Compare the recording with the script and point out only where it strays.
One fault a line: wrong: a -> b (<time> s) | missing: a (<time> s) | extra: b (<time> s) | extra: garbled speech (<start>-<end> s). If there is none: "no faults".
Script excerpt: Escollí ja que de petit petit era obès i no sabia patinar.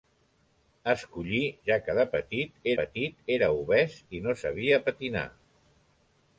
no faults